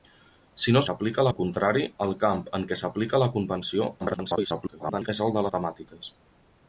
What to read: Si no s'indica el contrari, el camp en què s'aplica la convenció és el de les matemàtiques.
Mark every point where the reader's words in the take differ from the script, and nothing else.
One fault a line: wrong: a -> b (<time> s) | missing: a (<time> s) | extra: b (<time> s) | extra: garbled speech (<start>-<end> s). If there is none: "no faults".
wrong: s'indica -> s'aplica (0.9 s)
extra: garbled speech (4.0-5.1 s)
missing: les (5.5 s)